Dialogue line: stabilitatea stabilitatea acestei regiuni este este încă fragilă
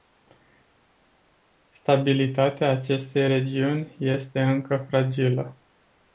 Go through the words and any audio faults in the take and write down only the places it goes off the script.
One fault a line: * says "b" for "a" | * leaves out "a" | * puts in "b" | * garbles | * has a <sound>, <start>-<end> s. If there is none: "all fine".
* leaves out "stabilitatea"
* leaves out "este"